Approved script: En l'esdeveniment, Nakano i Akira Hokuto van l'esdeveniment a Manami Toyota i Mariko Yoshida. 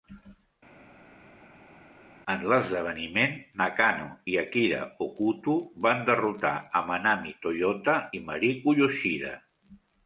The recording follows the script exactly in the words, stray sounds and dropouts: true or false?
false